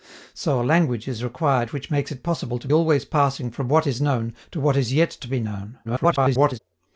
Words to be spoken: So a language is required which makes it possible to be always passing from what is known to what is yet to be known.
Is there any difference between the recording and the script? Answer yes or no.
yes